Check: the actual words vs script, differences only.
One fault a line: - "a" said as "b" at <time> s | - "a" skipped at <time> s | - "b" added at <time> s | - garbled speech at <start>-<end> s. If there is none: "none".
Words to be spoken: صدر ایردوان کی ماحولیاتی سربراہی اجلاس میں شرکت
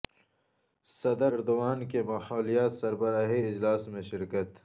none